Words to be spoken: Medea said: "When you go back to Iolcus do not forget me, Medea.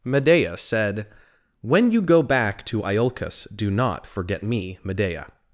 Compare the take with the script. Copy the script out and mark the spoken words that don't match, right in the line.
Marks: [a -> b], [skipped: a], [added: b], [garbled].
Medea said: "When you go back to Iolcus do not forget me, Medea.